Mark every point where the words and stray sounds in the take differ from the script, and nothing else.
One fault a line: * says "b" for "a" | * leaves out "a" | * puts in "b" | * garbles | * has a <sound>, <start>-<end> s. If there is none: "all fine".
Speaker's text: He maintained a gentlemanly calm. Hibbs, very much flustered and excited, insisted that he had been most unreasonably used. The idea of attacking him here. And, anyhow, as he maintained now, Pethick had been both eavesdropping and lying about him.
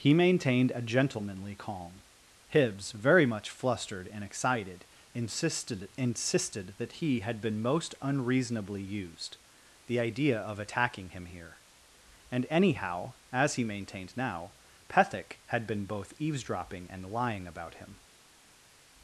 * puts in "insisted"